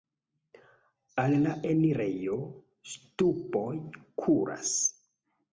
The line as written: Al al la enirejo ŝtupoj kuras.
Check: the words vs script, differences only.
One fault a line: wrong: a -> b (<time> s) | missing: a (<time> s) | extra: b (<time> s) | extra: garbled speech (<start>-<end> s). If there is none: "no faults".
missing: al (1.4 s)